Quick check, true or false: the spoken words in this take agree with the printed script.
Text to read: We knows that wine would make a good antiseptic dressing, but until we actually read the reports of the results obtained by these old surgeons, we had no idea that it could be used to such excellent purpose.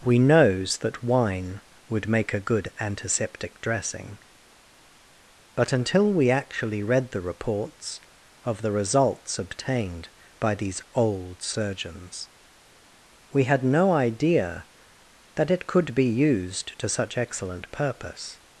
true